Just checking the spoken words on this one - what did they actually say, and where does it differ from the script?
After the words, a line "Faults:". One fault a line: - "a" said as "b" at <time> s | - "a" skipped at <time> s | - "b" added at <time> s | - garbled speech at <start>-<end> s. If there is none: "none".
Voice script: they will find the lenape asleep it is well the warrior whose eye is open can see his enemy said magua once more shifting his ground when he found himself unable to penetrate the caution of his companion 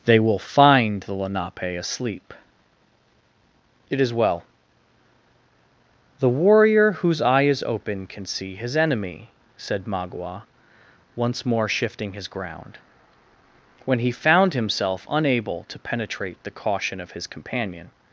they will find the lenape asleep it is well the warrior whose eye is open can see his enemy said magua once more shifting his ground when he found himself unable to penetrate the caution of his companion
Faults:
none